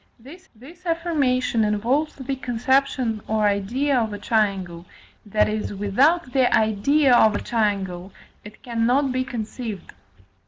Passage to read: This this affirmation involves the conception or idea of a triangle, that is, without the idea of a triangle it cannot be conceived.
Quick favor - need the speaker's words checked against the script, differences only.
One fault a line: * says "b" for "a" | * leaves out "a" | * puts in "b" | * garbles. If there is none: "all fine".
all fine